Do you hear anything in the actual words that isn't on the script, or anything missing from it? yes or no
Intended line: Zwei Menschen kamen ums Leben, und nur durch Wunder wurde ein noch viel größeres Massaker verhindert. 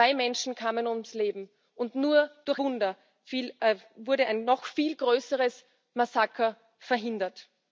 no